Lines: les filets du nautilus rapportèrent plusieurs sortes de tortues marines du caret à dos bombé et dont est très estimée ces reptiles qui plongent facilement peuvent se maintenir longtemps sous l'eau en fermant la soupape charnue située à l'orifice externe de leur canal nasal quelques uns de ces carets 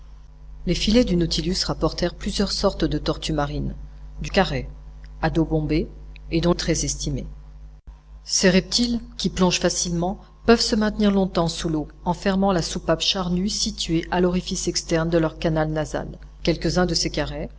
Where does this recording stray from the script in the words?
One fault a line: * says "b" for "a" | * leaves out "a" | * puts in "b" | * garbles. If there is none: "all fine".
all fine